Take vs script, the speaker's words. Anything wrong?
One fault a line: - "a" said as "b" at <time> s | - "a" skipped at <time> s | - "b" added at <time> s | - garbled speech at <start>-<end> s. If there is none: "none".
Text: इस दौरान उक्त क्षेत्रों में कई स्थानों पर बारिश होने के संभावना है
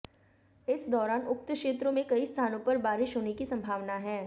- "के" said as "की" at 3.3 s